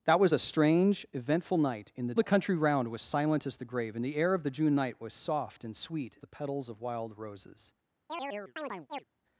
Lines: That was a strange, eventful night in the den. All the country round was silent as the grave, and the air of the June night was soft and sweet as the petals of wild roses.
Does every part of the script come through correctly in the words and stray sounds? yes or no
no